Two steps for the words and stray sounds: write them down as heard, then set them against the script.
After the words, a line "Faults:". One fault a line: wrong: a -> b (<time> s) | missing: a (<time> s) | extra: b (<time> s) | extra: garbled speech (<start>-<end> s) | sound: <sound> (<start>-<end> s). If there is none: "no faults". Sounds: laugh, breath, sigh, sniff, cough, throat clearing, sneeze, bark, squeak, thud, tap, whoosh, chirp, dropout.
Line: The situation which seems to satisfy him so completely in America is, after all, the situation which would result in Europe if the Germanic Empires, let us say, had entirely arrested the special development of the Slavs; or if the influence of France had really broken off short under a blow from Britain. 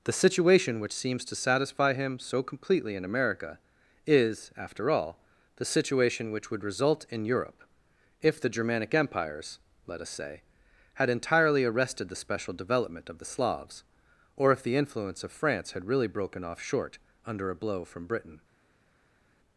The situation which seems to satisfy him so completely in America is, after all, the situation which would result in Europe if the Germanic Empires, let us say, had entirely arrested the special development of the Slavs; or if the influence of France had really broken off short under a blow from Britain.
Faults:
no faults